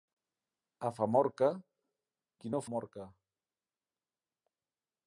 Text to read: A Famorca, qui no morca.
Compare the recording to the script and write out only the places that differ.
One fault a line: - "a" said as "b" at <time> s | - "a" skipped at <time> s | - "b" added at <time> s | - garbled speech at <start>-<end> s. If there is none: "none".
none